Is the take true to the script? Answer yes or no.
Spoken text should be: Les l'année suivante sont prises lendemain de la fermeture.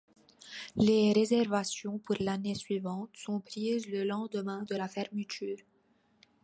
no